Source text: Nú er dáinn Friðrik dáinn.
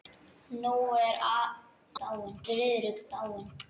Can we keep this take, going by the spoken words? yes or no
yes